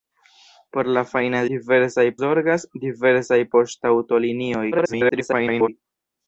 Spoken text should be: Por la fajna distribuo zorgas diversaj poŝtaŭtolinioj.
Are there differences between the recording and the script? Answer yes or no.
yes